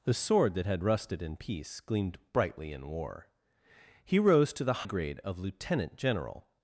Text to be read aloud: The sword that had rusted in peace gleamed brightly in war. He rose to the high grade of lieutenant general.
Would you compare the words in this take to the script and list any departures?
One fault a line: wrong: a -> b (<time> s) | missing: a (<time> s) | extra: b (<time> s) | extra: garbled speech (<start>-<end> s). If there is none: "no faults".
missing: high (4.9 s)